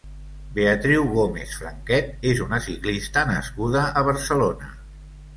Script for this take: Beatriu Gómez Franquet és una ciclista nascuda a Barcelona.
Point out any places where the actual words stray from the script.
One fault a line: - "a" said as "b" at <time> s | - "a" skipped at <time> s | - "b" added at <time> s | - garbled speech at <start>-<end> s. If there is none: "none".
none